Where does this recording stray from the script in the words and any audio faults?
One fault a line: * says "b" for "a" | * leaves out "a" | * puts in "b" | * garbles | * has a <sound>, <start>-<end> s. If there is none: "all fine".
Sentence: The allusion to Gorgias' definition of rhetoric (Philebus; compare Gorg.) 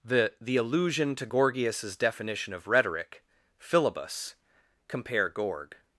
* puts in "the"